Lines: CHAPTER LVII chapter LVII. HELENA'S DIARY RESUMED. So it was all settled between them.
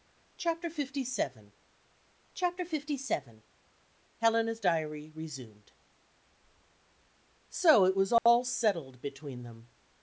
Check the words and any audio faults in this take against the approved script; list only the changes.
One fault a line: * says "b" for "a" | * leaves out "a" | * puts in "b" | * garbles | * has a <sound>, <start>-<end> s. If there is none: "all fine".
* has a dropout, 8.2-8.3 s